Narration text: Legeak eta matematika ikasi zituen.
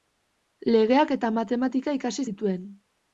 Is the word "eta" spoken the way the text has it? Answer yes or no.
yes